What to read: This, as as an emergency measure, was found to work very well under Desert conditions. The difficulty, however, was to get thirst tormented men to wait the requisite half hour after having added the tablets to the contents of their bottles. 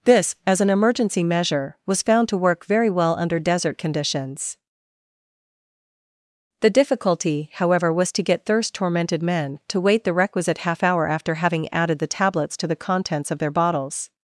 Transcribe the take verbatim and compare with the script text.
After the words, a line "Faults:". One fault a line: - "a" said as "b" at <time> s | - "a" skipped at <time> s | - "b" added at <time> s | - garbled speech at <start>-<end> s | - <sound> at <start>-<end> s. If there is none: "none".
This, as an emergency measure, was found to work very well under Desert conditions. The difficulty, however, was to get thirst tormented men to wait the requisite half hour after having added the tablets to the contents of their bottles.
Faults:
- "as" skipped at 0.6 s